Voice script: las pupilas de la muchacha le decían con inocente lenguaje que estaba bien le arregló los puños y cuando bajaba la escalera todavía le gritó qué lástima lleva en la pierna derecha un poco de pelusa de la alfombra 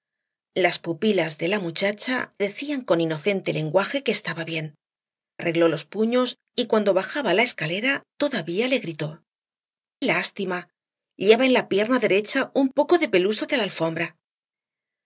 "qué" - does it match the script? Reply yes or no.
no